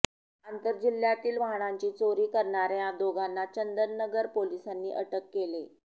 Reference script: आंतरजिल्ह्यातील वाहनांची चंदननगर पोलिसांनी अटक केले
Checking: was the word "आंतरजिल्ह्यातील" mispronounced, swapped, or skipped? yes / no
no